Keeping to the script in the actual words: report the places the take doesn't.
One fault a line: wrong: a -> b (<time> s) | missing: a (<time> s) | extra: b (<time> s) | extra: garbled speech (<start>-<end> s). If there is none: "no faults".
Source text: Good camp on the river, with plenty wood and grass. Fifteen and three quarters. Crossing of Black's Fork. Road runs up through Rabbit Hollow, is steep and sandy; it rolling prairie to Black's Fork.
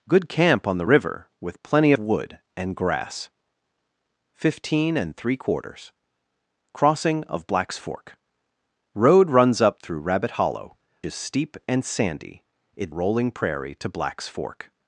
no faults